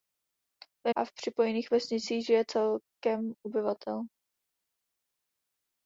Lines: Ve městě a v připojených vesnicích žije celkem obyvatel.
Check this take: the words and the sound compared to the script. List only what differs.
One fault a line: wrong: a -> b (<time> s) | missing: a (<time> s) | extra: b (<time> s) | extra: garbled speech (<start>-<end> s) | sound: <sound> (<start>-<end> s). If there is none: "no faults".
missing: městě (0.9 s)